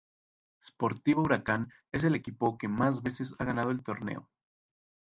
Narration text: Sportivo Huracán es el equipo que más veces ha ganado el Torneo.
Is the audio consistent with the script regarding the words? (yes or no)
yes